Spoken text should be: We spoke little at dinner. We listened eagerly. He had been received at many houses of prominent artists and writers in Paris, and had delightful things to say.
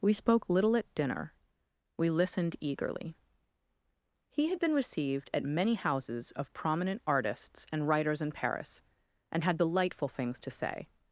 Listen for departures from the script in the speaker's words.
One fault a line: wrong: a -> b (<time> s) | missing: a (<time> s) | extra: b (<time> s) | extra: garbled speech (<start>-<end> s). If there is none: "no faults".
no faults